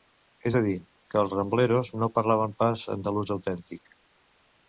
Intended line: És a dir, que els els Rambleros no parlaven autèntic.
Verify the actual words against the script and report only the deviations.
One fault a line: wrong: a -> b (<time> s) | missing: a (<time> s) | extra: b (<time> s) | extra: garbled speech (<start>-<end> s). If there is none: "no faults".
missing: els (1.3 s)
extra: pas andalús (2.6 s)